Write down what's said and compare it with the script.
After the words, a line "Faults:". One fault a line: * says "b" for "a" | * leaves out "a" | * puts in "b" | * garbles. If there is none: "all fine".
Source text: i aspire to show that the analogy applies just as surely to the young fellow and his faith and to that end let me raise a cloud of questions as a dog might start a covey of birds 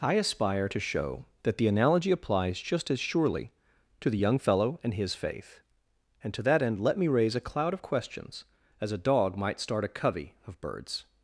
i aspire to show that the analogy applies just as surely to the young fellow and his faith and to that end let me raise a cloud of questions as a dog might start a covey of birds
Faults:
all fine